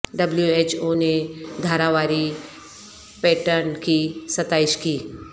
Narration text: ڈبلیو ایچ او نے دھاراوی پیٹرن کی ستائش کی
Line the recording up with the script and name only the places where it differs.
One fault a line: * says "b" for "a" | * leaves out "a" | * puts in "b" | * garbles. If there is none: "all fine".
all fine